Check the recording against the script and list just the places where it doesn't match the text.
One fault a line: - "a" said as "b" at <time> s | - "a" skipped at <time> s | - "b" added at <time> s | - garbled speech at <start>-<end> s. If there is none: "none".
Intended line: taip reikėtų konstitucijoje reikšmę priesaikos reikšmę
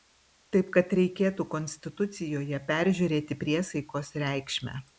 - "kad" added at 0.8 s
- "reikšmę" said as "peržiūrėti" at 2.7 s